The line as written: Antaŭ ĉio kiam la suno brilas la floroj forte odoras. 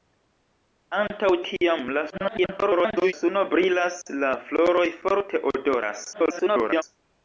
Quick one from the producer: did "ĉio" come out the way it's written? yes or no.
no